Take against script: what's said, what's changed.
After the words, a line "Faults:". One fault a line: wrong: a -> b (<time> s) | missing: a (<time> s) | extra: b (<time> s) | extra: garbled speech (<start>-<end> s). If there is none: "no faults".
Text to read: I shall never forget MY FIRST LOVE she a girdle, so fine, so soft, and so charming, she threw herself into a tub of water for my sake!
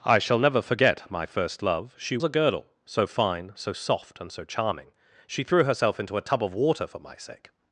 I shall never forget MY FIRST LOVE she a girdle, so fine, so soft, and so charming, she threw herself into a tub of water for my sake!
Faults:
no faults